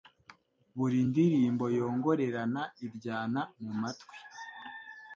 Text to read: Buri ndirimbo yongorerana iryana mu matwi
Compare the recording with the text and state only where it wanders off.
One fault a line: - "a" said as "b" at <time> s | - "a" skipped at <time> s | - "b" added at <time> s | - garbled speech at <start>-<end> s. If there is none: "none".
none